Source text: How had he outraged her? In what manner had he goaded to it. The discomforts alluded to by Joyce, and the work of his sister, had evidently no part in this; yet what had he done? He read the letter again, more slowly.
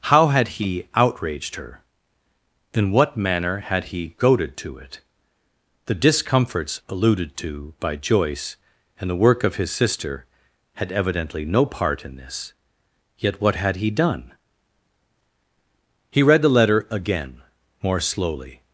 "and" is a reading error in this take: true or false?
false